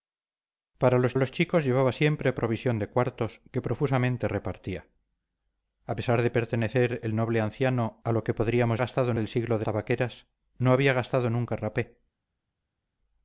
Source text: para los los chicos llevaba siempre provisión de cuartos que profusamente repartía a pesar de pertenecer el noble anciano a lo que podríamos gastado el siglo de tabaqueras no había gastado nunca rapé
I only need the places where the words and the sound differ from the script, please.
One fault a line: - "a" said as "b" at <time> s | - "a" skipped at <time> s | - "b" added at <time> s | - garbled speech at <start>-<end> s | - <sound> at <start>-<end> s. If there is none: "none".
none